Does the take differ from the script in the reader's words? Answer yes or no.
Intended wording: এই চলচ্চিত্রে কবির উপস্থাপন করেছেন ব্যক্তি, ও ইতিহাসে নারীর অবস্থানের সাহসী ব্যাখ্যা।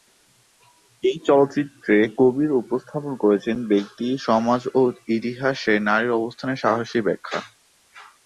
yes